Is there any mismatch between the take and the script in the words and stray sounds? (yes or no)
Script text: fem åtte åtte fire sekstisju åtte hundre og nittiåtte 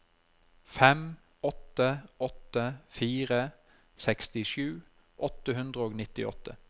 no